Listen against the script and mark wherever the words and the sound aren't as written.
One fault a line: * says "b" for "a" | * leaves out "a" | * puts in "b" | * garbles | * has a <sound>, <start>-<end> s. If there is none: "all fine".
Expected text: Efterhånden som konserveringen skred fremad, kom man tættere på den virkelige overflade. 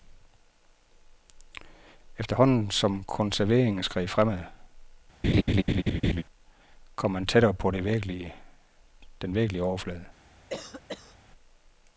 * has a laugh, 5.2-6.2 s
* has a cough, 10.5-11.2 s